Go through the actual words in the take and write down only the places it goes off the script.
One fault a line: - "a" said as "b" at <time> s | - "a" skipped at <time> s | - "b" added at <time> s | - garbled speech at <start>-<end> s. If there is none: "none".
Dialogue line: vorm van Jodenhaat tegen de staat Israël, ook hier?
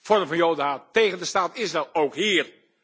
none